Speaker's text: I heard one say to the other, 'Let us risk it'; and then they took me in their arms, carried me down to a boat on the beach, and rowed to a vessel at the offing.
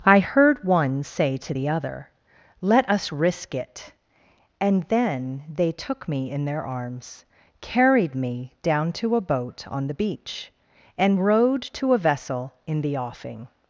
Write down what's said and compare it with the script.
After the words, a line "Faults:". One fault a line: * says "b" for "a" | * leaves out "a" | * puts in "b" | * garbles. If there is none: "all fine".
I heard one say to the other, 'Let us risk it'; and then they took me in their arms, carried me down to a boat on the beach, and rowed to a vessel in the offing.
Faults:
* says "in" for "at"